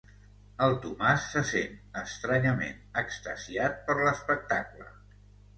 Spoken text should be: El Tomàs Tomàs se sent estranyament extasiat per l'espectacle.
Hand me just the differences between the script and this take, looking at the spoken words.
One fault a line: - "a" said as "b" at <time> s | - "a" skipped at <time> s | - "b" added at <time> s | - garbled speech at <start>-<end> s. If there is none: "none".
- "Tomàs" skipped at 1.3 s